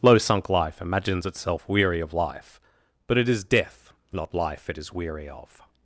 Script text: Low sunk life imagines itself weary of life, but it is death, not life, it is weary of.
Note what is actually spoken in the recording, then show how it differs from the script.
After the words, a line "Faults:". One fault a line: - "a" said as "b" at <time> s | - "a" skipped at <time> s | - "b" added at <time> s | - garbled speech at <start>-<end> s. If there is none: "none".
Low sunk life imagines itself weary of life, but it is death, not life, it is weary of.
Faults:
none